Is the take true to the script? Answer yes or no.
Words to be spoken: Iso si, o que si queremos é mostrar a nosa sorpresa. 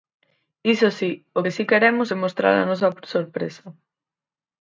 yes